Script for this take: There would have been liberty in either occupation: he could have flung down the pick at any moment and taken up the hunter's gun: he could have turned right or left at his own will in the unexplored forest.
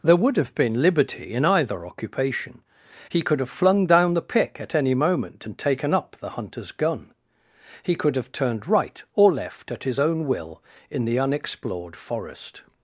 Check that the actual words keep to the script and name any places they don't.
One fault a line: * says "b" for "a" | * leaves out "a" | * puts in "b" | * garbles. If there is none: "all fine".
all fine